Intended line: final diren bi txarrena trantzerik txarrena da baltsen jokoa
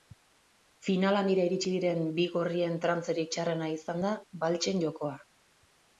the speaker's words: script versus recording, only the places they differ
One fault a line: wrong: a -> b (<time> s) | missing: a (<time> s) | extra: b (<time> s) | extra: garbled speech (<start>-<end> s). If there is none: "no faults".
extra: handira iritsi (1.2 s)
wrong: txarrena -> gorrien (2.4 s)
extra: izan (3.7 s)